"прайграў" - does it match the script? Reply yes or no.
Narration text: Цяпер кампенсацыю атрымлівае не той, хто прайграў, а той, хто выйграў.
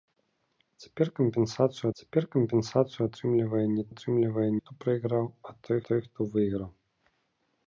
yes